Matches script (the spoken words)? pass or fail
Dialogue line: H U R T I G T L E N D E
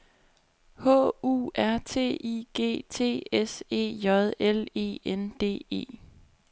fail